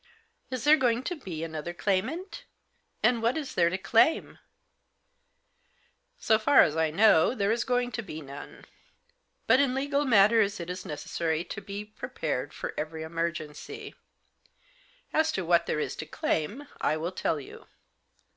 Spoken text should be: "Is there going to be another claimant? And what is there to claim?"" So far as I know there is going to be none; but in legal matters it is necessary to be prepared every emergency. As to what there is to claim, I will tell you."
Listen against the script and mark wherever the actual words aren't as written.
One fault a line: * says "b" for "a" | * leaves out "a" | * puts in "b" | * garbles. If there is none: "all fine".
* puts in "for"